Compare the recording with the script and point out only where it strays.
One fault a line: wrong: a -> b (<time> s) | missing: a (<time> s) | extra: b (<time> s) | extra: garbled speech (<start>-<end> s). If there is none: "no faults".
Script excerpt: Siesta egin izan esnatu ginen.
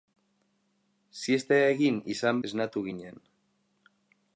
no faults